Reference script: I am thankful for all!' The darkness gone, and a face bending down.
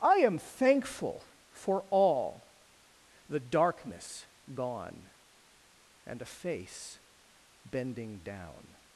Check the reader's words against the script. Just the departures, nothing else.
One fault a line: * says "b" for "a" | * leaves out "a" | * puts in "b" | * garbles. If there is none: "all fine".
all fine